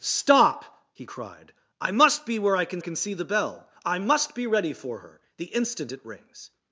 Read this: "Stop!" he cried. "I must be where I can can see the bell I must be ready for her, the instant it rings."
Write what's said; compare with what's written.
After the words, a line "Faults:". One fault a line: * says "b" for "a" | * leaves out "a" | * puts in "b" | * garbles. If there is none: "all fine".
"Stop!" he cried. "I must be where I can can see the bell I must be ready for her, the instant it rings."
Faults:
all fine